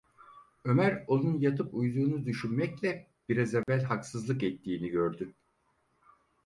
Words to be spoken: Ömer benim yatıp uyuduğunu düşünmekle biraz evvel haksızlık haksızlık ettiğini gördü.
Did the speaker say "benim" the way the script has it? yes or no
no